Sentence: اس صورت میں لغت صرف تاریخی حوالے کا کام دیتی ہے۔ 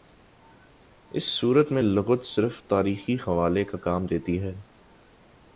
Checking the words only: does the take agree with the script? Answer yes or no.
yes